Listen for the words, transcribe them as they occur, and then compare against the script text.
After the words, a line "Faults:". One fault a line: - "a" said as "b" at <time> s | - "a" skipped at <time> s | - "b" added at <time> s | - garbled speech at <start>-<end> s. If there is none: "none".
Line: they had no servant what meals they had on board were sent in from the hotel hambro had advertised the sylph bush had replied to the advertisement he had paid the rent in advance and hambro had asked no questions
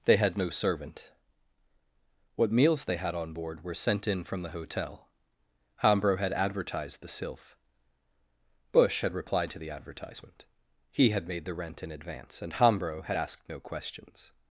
they had no servant what meals they had on board were sent in from the hotel hambro had advertised the sylph bush had replied to the advertisement he had made the rent in advance and hambro had asked no questions
Faults:
- "paid" said as "made" at 11.3 s